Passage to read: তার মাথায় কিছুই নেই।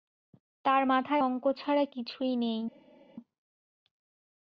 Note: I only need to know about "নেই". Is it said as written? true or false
true